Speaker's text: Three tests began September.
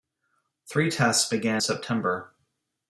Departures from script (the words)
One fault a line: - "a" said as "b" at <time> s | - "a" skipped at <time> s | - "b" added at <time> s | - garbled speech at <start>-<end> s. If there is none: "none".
none